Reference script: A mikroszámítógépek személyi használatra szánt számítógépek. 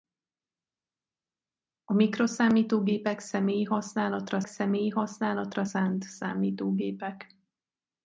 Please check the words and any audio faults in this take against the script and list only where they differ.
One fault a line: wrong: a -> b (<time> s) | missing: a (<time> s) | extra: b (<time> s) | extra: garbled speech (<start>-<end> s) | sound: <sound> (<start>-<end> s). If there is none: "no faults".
extra: személyi használatra (4.4 s)